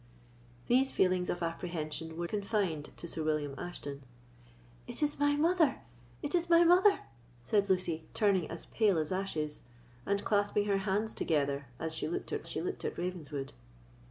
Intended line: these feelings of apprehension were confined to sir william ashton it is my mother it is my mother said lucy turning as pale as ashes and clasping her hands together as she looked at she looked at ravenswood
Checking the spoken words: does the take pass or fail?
pass